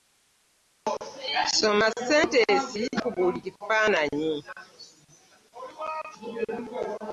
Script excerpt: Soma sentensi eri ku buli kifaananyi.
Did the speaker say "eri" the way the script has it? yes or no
no